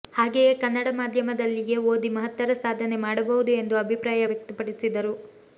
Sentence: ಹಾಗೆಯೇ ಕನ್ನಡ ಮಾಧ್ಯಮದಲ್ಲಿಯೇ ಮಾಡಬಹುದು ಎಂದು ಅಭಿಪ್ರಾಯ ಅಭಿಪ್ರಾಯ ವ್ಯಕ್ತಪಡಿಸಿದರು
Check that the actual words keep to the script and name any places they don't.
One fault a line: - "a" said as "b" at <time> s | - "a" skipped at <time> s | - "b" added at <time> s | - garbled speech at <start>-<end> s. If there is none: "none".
- "ಓದಿ ಮಹತ್ತರ ಸಾಧನೆ" added at 1.9 s
- "ಅಭಿಪ್ರಾಯ" skipped at 4.2 s